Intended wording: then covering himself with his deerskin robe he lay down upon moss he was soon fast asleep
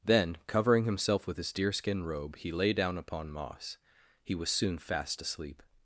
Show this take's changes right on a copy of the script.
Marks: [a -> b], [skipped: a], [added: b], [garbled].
then covering himself with his deerskin robe he lay down upon moss he was soon fast asleep